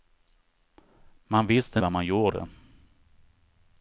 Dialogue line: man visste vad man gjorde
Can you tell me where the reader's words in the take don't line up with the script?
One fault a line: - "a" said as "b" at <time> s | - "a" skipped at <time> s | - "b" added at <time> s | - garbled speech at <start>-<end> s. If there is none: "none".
none